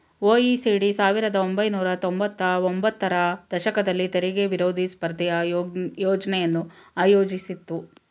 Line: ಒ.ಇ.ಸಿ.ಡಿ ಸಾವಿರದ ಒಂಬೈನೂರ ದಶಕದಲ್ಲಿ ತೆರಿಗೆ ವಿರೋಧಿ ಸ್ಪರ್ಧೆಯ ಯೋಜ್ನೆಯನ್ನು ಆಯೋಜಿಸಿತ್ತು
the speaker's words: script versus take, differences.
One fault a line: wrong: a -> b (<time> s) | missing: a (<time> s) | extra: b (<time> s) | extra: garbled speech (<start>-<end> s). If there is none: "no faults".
extra: ತೊಂಬತ್ತ ಒಂಬತ್ತರ (2.0 s)